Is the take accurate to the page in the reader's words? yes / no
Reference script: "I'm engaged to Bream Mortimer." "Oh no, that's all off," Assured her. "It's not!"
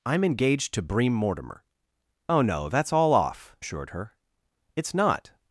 yes